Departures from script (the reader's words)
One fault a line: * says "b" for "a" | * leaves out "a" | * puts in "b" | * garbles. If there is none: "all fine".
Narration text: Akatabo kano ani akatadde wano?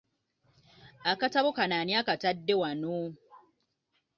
all fine